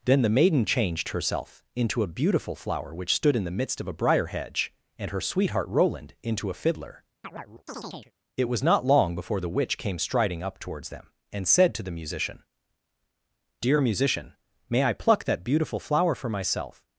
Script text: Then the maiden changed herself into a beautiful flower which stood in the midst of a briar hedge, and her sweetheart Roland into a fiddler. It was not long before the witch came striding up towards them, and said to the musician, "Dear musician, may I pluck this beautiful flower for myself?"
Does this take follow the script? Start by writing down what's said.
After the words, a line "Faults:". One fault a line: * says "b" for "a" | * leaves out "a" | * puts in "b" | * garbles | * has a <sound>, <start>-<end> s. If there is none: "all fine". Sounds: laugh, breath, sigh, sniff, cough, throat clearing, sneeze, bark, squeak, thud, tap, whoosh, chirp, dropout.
Then the maiden changed herself into a beautiful flower which stood in the midst of a briar hedge, and her sweetheart Roland into a fiddler. It was not long before the witch came striding up towards them, and said to the musician, "Dear musician, may I pluck that beautiful flower for myself?"
Faults:
* has a chirp, 7.2-8.1 s
* says "that" for "this"